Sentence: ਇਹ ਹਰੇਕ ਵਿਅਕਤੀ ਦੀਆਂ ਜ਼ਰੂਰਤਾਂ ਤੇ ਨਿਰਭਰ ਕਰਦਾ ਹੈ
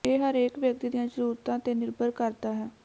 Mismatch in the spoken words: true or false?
false